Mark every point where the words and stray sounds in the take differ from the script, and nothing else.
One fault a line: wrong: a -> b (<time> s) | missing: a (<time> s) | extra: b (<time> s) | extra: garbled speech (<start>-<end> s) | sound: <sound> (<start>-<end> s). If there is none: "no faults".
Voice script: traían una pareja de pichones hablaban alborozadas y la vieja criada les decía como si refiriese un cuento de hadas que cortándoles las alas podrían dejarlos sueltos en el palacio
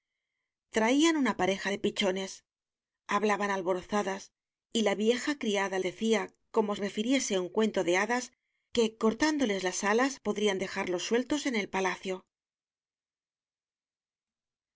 missing: les (5.8 s)
missing: si (6.8 s)